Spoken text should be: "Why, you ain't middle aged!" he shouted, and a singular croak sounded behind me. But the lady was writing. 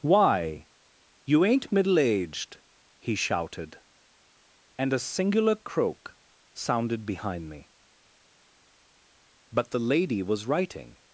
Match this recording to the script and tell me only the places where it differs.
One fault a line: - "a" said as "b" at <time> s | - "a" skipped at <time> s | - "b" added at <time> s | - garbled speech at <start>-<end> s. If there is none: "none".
none